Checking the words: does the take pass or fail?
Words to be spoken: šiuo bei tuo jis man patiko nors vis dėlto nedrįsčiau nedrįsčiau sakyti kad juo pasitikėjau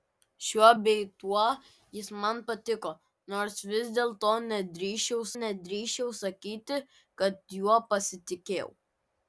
pass